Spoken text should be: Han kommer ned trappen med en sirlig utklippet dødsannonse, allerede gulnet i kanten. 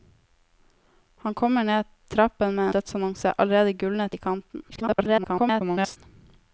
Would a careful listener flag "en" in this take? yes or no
yes